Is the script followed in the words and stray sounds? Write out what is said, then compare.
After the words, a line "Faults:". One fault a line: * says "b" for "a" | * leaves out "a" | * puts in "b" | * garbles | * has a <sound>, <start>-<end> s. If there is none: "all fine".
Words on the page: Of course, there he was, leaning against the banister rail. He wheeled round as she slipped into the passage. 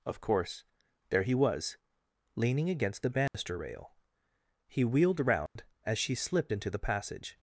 Of course, there he was, leaning against the banister rail. He wheeled round as she slipped into the passage.
Faults:
* has a dropout, 3.3-3.3 s
* has a dropout, 5.5-5.6 s